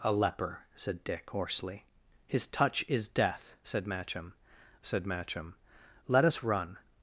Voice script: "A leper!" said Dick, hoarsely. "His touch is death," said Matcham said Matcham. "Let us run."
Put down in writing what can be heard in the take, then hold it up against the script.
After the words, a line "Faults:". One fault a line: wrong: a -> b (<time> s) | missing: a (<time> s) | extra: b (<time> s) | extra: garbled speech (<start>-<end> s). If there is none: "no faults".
"A leper!" said Dick, hoarsely. "His touch is death," said Matcham said Matcham. "Let us run."
Faults:
no faults